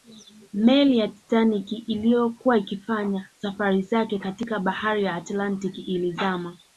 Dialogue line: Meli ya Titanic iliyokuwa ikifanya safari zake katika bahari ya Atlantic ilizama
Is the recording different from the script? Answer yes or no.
no